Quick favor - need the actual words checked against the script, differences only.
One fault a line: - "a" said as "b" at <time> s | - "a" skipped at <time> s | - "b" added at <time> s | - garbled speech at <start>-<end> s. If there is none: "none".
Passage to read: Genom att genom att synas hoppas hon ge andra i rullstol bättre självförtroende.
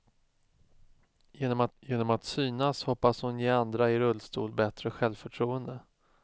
none